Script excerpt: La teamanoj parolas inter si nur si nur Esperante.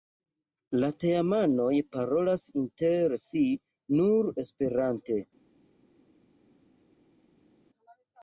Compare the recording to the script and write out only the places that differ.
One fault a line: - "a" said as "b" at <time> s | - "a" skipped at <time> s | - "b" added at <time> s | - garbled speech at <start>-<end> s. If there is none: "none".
- "si nur" skipped at 4.3 s